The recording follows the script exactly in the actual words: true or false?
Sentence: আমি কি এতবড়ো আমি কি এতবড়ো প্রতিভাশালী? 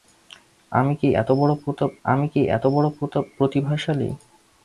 true